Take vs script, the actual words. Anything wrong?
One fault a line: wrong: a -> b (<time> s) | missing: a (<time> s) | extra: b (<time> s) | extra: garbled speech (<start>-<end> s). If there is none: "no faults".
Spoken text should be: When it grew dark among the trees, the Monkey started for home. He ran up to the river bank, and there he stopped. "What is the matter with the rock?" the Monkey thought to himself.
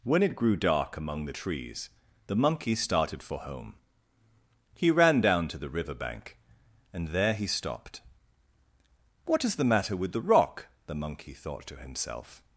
wrong: up -> down (5.2 s)